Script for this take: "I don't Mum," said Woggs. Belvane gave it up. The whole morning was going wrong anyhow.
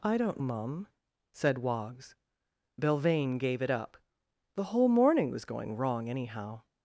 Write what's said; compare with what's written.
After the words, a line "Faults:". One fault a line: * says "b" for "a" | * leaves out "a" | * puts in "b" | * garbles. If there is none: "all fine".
"I don't Mum," said Woggs. Belvane gave it up. The whole morning was going wrong anyhow.
Faults:
all fine